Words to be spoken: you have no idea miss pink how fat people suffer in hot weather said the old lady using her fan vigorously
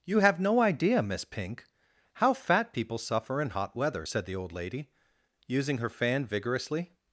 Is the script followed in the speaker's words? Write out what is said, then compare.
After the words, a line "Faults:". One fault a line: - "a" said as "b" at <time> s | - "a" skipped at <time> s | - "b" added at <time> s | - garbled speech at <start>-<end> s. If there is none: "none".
you have no idea miss pink how fat people suffer in hot weather said the old lady using her fan vigorously
Faults:
none